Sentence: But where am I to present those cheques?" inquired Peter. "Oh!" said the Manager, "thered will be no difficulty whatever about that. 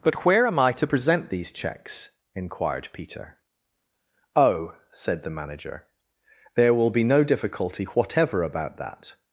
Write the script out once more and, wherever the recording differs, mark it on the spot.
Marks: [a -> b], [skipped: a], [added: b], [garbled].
But where am I to present [those -> these] cheques?" inquired Peter. "Oh!" said the Manager, ["thered -> there] will be no difficulty whatever about that.